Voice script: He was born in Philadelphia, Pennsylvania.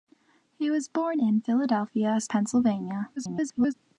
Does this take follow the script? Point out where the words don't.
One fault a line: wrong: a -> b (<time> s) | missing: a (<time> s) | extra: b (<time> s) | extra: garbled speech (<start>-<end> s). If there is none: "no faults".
extra: garbled speech (3.2-3.7 s)